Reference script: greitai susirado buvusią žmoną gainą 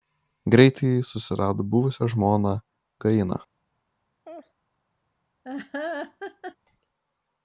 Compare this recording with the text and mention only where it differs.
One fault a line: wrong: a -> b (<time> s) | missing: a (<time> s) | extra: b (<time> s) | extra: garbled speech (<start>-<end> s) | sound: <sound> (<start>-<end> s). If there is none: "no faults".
sound: laugh (4.2-4.5 s)
sound: laugh (5.4-6.6 s)